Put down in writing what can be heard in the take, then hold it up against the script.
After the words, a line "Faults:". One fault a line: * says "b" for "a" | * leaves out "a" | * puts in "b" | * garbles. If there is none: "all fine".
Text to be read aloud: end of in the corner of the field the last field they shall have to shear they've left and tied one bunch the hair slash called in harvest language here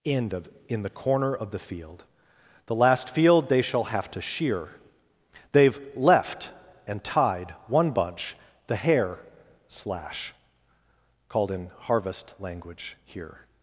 end of in the corner of the field the last field they shall have to shear they've left and tied one bunch the hair slash called in harvest language here
Faults:
all fine